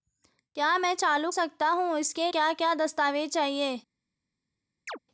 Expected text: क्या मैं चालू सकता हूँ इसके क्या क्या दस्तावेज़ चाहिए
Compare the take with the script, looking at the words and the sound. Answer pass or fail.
fail